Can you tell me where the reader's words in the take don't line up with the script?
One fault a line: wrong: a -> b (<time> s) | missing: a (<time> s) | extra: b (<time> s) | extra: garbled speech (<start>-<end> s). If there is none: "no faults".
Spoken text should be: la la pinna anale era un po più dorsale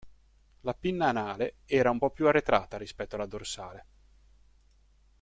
missing: la (0.7 s)
extra: arretrata rispetto alla (2.3 s)